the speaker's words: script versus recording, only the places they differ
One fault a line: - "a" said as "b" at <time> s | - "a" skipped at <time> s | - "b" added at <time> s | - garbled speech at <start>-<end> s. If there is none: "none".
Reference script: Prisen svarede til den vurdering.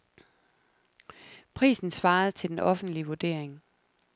- "offentlige" added at 2.6 s